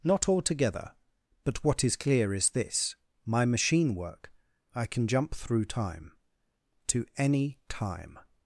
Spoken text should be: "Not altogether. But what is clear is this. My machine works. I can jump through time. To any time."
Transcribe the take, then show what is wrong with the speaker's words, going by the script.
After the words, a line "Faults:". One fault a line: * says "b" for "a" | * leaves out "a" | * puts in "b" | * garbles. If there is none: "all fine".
"Not altogether. But what is clear is this. My machine work. I can jump through time. To any time."
Faults:
* says "work" for "works"